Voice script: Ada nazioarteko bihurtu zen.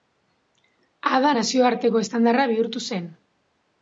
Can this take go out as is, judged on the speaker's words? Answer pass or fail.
fail